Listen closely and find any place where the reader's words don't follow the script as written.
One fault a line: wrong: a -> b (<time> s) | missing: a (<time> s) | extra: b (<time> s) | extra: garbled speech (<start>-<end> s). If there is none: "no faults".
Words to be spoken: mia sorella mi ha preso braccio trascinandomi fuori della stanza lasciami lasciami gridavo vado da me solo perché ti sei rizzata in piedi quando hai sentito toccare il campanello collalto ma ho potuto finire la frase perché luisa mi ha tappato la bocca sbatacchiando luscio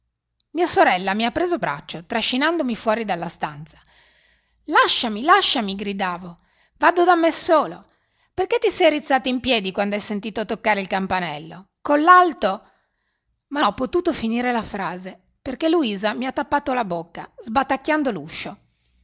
no faults